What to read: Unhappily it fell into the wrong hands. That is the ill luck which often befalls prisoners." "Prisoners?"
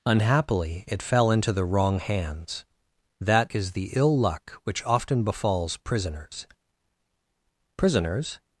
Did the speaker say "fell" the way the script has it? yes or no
yes